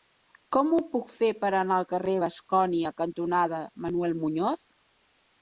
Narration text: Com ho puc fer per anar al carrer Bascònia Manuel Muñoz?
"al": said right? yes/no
yes